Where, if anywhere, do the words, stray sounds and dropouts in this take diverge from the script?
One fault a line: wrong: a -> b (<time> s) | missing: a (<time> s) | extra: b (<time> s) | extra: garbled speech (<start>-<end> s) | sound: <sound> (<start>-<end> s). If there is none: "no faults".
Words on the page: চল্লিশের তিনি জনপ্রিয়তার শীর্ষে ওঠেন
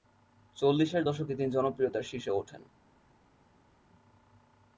extra: দশকে (1.0 s)